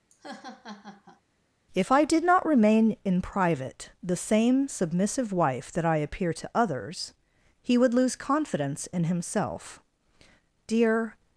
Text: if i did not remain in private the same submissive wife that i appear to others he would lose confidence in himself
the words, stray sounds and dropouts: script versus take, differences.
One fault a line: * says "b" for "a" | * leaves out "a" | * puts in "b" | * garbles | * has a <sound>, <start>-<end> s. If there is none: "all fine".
* has a laugh, 0.1-1.2 s
* puts in "dear"